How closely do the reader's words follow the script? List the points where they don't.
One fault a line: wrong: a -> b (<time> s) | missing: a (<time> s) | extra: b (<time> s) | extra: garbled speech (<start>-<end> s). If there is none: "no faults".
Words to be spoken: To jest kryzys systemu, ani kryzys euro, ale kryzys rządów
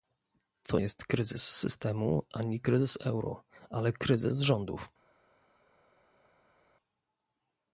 no faults